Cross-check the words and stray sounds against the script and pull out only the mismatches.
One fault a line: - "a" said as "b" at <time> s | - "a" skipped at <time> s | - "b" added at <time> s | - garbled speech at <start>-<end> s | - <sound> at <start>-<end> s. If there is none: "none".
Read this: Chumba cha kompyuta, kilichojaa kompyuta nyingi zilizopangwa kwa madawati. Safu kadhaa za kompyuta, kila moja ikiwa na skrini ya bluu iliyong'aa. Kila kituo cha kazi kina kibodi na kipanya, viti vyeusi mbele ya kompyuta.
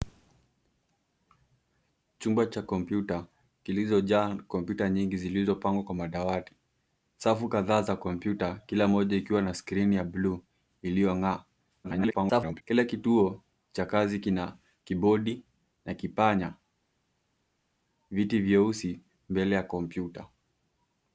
- garbled speech at 11.8-12.6 s